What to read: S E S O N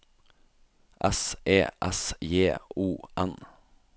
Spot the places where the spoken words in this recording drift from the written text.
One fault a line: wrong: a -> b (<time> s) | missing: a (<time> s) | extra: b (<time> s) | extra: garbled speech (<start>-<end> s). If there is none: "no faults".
extra: J (2.2 s)